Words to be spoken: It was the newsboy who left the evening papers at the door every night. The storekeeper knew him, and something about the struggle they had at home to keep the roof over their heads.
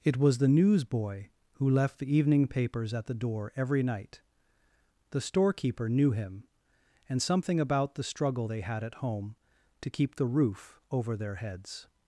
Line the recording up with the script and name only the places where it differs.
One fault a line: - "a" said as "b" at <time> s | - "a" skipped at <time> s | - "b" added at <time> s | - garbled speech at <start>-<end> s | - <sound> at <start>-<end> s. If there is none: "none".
none